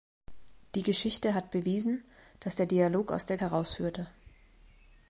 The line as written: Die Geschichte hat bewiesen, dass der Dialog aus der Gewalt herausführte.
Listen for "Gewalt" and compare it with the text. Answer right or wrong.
wrong